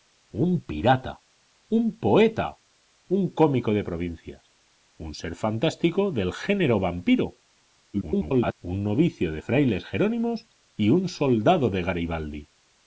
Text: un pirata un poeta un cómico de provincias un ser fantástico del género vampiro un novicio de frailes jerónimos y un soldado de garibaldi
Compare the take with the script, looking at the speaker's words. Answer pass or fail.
fail